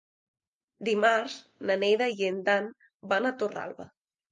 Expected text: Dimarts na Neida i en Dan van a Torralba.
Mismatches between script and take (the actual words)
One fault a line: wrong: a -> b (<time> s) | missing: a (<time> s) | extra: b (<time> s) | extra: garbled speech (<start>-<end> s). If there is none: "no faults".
no faults